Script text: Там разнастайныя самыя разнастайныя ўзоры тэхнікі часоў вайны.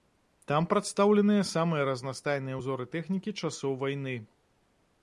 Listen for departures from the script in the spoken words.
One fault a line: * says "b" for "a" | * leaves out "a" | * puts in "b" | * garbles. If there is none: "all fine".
* says "прадстаўленыя" for "разнастайныя"